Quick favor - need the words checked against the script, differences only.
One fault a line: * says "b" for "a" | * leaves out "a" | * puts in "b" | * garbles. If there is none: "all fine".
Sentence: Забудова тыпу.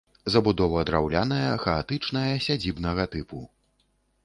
* puts in "драўляная хаатычная сядзібнага"